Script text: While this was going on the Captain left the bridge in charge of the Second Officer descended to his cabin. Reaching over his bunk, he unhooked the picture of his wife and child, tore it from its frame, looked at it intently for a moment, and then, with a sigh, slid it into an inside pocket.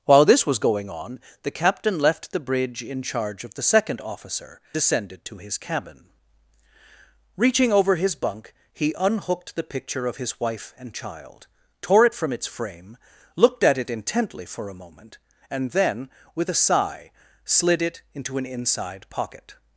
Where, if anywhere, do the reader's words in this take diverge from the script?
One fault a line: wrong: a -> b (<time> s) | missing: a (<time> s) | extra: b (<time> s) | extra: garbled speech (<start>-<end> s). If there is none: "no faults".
no faults